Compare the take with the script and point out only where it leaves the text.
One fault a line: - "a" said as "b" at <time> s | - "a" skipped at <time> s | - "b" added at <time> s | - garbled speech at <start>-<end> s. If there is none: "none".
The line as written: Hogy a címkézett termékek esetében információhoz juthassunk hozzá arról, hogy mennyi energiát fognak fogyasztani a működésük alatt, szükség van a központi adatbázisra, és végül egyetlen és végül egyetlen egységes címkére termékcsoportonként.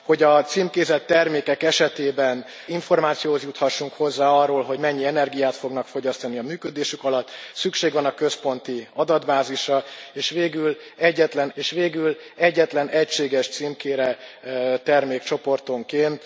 none